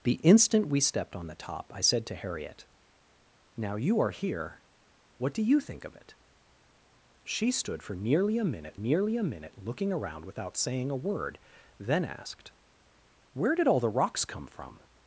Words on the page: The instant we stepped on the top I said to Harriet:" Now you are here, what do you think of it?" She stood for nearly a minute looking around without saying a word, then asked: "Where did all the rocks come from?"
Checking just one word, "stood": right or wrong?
right